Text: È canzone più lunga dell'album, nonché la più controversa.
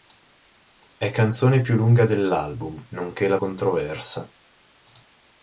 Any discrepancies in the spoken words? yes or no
yes